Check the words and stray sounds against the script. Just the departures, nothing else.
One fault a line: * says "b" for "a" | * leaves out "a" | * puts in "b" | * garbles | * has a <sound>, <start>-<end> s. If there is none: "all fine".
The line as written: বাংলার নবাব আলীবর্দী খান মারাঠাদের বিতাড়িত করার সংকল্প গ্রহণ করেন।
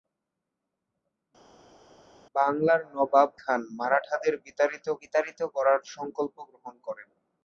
* leaves out "আলীবর্দী"
* puts in "বিতাড়িত"